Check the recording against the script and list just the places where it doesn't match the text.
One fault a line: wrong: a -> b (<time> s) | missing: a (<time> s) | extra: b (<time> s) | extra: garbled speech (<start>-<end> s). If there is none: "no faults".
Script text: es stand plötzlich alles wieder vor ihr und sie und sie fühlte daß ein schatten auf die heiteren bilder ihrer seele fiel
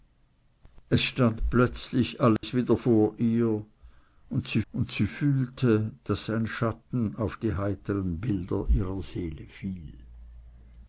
no faults